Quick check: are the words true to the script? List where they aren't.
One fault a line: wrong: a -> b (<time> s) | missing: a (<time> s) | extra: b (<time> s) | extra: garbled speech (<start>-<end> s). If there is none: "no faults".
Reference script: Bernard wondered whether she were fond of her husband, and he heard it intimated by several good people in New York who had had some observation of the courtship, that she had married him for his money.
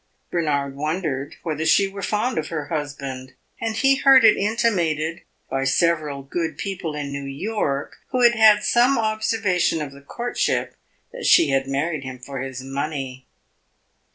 no faults